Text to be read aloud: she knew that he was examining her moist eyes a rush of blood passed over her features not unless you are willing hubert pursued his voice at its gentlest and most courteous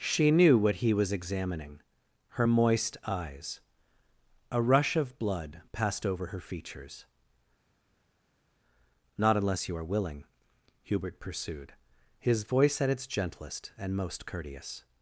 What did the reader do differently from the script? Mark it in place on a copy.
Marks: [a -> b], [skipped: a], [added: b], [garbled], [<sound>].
she knew [that -> what] he was examining her moist eyes a rush of blood passed over her features not unless you are willing hubert pursued his voice at its gentlest and most courteous